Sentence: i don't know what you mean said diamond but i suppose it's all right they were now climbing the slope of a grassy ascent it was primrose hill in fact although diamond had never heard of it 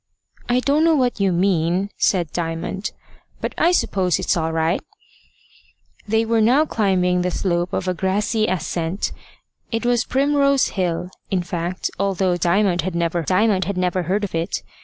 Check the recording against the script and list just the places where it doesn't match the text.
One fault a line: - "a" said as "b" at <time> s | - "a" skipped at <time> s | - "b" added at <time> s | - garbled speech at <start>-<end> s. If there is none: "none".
- "diamond had never" added at 13.2 s